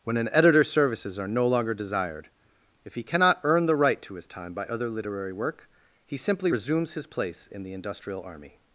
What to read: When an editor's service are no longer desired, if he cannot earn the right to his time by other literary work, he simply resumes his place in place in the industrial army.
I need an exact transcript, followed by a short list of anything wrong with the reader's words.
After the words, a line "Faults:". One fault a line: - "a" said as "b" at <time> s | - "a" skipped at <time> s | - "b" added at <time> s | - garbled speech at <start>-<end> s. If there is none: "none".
When an editor's services are no longer desired, if he cannot earn the right to his time by other literary work, he simply resumes his place in the industrial army.
Faults:
- "service" said as "services" at 0.7 s
- "place in" skipped at 7.6 s